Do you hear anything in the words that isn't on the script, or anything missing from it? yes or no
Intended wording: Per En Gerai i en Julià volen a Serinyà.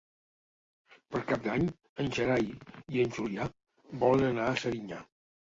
yes